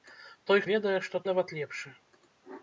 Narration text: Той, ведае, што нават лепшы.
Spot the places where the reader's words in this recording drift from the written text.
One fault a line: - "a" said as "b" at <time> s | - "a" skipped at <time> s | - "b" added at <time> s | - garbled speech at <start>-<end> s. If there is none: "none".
none